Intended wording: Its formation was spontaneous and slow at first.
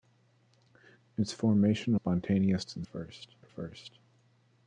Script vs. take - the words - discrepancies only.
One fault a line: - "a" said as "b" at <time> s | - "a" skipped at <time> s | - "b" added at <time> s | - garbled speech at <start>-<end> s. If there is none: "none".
- "was" skipped at 1.9 s
- "slow" said as "first" at 2.8 s